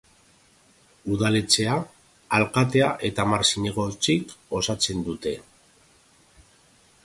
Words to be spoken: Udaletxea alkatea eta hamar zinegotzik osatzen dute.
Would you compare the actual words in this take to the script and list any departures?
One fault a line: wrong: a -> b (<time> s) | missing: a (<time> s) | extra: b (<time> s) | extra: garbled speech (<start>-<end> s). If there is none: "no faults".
no faults